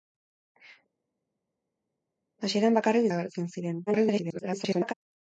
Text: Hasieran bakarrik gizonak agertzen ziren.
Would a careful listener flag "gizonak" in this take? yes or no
yes